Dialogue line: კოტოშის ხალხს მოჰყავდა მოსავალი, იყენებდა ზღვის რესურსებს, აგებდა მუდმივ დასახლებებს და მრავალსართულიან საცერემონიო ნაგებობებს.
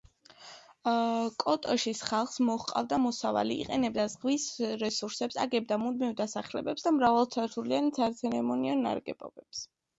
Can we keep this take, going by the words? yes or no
yes